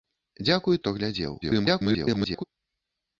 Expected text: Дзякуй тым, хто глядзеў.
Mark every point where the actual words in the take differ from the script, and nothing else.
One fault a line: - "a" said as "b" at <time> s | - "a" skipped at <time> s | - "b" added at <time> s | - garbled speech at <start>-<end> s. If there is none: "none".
- "тым" skipped at 0.8 s
- garbled speech at 1.4-2.4 s